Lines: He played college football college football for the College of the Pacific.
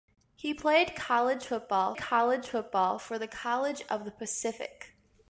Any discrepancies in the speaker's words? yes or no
no